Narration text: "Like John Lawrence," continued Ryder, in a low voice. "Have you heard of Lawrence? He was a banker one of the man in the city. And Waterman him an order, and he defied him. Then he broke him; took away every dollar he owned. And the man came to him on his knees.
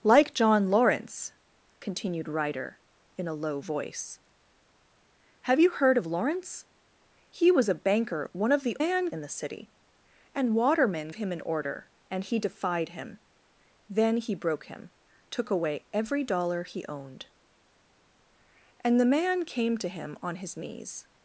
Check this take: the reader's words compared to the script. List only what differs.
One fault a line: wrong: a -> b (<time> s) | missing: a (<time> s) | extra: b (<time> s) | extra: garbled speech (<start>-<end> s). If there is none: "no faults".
no faults